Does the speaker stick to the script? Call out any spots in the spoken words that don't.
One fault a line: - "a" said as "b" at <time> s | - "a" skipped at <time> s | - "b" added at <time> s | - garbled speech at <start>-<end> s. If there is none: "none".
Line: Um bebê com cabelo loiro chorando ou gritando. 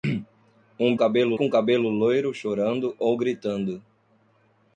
- "bebê" said as "cabelo" at 1.0 s